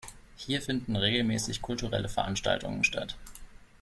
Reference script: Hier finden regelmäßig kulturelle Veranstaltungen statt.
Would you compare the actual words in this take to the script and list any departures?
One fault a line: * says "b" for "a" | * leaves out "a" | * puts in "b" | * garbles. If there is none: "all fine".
all fine